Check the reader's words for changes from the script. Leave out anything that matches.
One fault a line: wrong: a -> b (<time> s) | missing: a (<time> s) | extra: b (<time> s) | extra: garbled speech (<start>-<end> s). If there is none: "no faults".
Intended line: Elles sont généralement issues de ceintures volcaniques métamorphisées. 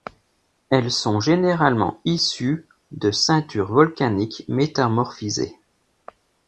no faults